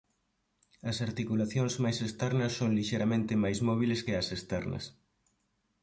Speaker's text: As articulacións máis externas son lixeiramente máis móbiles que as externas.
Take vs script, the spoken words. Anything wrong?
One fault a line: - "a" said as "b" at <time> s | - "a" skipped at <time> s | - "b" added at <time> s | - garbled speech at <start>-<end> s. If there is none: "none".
none